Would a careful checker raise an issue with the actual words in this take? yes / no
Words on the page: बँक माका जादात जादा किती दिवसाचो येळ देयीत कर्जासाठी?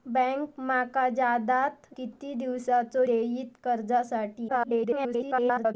yes